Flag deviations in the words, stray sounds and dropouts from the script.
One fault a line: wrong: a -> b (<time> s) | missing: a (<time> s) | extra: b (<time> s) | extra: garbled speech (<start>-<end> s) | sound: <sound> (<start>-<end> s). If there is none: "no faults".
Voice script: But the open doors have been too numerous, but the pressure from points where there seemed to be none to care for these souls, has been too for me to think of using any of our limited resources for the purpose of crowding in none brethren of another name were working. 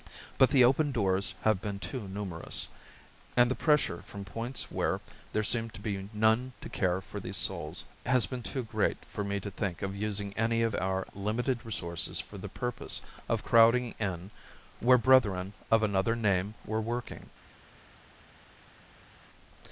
wrong: but -> and (3.4 s)
extra: great (8.6 s)
wrong: none -> where (14.8 s)